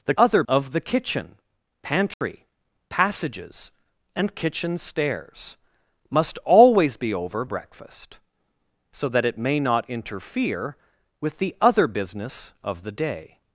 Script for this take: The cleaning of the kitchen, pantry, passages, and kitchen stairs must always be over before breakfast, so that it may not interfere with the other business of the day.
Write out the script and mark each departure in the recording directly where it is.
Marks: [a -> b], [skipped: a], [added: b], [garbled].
The [cleaning -> other] of the kitchen, pantry, passages, and kitchen stairs must always be over [skipped: before] breakfast, so that it may not interfere with the other business of the day.